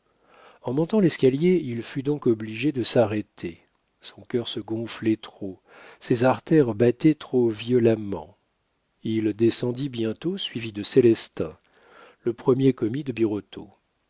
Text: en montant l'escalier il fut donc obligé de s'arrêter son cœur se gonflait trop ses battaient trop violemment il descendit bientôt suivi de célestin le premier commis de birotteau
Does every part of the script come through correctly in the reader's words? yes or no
no